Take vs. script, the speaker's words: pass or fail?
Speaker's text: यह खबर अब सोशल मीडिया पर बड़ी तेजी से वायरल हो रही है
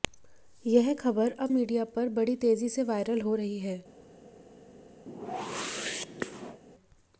fail